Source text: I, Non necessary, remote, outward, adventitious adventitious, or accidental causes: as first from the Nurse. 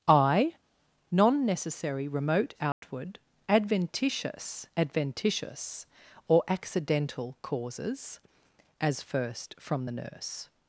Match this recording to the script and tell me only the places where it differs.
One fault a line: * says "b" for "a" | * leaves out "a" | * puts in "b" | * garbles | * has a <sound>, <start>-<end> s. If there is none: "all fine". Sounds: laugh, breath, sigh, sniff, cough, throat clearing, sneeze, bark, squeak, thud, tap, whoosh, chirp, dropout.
* has a dropout, 2.7-2.8 s